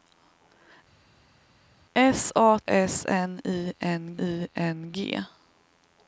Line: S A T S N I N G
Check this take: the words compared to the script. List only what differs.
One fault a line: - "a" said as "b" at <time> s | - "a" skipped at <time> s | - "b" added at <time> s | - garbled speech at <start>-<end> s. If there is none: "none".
- "T S" said as "S N I" at 2.7 s